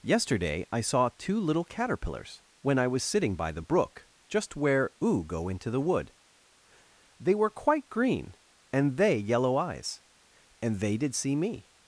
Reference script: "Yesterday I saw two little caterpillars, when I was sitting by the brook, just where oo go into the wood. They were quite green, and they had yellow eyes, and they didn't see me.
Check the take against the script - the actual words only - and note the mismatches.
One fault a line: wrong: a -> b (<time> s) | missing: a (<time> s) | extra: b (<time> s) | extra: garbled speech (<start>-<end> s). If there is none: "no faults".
missing: had (9.2 s)
wrong: didn't -> did (11.0 s)